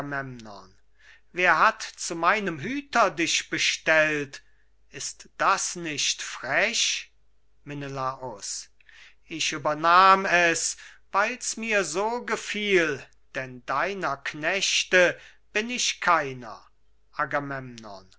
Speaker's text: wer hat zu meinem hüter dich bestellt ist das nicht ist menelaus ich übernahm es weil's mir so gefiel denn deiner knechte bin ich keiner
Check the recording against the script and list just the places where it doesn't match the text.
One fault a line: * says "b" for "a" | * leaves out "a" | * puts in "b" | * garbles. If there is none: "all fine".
* says "frech" for "ist"